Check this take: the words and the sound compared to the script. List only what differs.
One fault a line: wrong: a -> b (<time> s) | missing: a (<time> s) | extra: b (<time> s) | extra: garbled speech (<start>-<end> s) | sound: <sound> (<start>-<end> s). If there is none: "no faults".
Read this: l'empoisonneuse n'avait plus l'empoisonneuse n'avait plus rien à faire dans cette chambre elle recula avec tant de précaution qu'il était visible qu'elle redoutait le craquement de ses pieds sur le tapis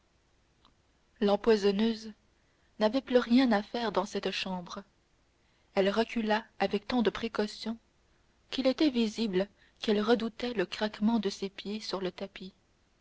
missing: l'empoisonneuse n'avait plus (3.2 s)